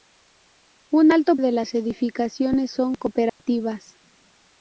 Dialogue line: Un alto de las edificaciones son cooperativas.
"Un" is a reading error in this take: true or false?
false